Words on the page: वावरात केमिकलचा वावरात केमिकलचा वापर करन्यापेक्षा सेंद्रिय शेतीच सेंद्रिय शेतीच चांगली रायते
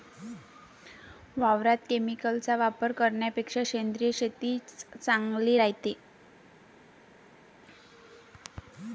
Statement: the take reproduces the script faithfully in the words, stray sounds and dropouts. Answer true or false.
false